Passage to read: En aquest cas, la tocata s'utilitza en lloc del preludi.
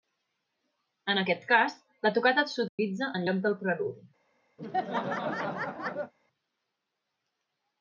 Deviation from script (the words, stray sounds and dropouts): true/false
true